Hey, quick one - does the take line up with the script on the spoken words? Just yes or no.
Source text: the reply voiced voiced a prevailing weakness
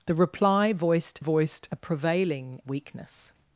yes